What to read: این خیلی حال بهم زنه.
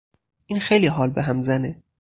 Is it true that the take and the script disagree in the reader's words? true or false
false